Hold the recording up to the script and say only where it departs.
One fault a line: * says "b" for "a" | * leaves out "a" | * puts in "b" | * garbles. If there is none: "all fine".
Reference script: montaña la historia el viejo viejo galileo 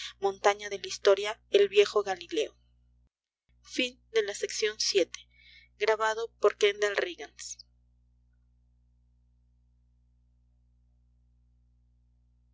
* puts in "de"
* leaves out "viejo"